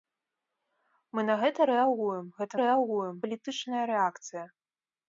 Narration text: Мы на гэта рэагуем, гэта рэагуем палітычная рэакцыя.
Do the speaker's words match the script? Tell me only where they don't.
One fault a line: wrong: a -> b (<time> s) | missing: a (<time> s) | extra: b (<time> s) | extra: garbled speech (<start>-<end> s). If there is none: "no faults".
no faults